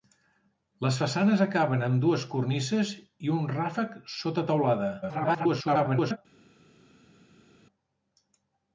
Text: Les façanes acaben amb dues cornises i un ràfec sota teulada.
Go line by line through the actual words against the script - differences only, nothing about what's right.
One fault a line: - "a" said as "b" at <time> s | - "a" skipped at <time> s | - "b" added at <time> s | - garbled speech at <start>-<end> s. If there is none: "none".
- garbled speech at 5.0-6.2 s